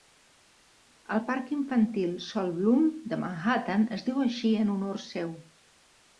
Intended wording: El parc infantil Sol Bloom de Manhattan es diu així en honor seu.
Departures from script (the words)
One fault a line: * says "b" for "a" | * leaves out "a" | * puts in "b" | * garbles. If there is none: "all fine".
all fine